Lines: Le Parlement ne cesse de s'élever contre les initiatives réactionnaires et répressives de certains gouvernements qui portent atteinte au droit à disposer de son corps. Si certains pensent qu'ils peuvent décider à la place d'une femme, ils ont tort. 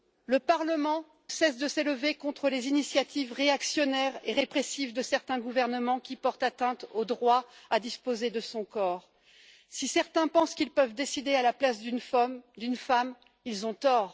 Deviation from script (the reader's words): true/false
true